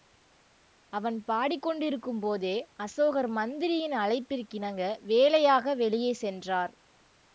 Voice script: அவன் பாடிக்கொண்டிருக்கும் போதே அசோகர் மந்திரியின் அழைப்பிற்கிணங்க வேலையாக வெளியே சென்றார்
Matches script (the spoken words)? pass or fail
pass